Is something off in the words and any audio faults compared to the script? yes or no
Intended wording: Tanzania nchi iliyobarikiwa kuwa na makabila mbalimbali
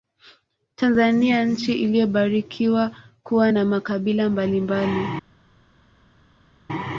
no